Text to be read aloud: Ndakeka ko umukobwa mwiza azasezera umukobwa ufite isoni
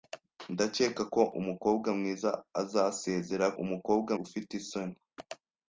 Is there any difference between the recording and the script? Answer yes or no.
no